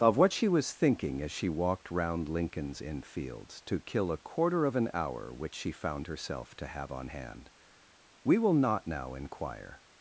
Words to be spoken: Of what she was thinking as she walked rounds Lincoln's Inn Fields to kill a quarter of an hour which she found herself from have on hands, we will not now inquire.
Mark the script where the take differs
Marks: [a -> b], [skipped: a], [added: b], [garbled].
Of what she was thinking as she walked [rounds -> round] Lincoln's Inn Fields to kill a quarter of an hour which she found herself [from -> to] have on [hands, -> hand] we will not now inquire.